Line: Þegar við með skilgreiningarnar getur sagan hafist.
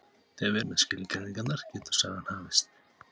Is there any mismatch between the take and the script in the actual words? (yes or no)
no